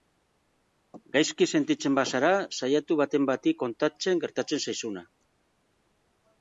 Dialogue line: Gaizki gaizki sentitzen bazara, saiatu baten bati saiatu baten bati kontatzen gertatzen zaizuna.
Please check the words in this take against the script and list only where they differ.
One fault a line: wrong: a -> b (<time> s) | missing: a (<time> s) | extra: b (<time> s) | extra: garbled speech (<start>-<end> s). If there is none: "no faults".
missing: gaizki (1.5 s)
missing: saiatu baten bati (3.5 s)